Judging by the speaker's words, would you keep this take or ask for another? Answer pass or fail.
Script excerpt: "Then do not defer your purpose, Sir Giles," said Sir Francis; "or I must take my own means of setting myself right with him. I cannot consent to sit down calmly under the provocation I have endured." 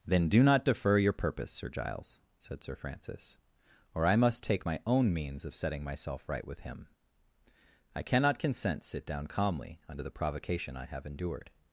fail